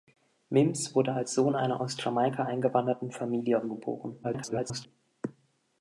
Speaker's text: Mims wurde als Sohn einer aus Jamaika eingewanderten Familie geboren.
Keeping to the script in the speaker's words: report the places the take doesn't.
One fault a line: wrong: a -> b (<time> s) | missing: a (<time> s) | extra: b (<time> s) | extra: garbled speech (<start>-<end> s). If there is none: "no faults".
extra: garbled speech (4.2-4.9 s)